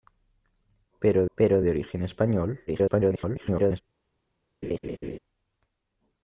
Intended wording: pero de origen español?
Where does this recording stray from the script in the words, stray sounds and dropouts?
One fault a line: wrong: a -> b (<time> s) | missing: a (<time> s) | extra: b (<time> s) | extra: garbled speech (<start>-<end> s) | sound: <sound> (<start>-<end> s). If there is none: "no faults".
extra: pero (1.4 s)
extra: garbled speech (2.7-3.8 s)
sound: laugh (4.6-5.2 s)